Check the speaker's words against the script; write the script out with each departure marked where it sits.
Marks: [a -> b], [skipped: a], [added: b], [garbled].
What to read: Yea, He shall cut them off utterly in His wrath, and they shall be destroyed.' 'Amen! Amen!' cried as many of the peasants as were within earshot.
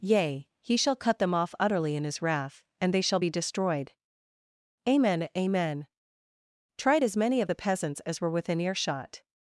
Yea, He shall cut them off utterly in His wrath, and they shall be destroyed.' 'Amen! Amen!' [cried -> tried] as many of the peasants as were within earshot.